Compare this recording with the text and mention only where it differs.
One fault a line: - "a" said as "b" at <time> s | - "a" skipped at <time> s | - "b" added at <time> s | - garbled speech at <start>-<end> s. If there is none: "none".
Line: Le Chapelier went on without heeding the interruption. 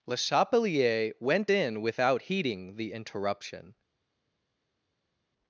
- "on" said as "in" at 1.5 s